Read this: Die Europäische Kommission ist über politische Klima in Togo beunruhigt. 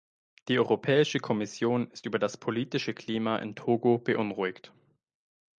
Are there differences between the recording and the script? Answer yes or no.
yes